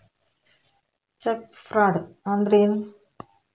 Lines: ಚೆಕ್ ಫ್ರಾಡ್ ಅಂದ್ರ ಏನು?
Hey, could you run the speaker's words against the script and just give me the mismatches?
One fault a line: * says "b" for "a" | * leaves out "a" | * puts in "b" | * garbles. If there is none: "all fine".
all fine